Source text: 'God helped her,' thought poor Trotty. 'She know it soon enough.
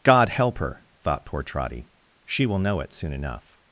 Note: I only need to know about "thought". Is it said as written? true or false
true